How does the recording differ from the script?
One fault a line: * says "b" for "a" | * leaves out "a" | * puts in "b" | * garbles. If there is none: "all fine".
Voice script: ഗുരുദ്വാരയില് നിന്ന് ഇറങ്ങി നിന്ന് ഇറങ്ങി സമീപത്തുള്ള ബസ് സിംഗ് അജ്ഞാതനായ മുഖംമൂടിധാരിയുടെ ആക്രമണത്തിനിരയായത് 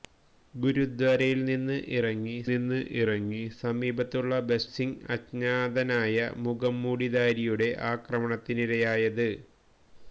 all fine